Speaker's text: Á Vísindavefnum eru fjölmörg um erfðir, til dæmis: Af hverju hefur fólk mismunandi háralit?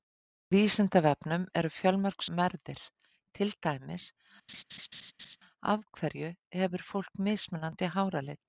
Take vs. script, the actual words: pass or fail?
pass